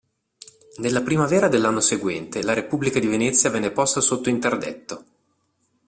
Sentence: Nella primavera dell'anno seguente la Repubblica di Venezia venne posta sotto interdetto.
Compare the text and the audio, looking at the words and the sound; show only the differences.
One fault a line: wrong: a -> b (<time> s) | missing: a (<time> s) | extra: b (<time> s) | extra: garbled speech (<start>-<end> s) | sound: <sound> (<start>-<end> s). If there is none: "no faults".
no faults